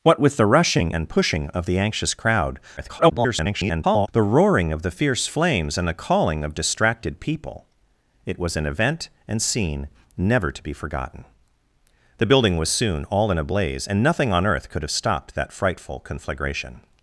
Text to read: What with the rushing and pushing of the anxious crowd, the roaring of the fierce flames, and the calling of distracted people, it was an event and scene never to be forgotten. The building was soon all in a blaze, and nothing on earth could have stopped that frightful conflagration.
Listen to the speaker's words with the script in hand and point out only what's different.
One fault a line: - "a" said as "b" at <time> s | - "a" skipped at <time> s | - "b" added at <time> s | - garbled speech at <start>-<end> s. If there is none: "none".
- garbled speech at 2.8-4.1 s